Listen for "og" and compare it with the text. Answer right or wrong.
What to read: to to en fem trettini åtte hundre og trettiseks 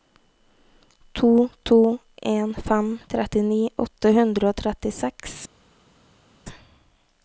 right